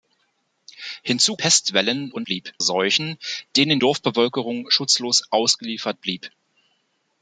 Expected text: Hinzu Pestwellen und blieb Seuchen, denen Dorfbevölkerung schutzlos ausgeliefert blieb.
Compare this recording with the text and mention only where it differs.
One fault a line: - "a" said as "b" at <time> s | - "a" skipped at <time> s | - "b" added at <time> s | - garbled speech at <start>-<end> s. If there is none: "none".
none